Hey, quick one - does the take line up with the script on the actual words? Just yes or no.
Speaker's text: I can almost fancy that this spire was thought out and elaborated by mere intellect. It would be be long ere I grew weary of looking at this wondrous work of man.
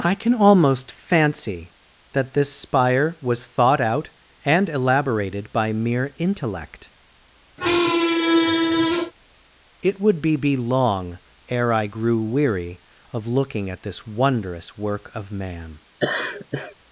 yes